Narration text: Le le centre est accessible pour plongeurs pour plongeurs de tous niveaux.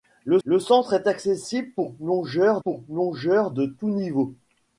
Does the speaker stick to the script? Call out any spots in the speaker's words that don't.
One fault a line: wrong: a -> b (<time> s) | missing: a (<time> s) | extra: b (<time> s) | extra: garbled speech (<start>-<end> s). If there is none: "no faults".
no faults